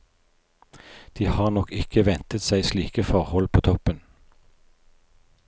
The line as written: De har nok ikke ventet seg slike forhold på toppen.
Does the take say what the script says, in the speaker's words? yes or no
yes